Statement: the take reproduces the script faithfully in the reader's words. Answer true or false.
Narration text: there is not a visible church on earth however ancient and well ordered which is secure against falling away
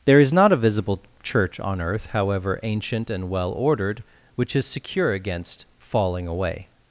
true